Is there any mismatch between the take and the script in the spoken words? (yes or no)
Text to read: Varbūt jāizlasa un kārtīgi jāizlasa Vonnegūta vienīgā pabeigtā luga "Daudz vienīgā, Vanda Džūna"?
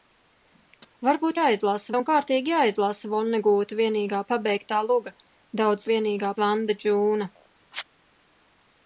no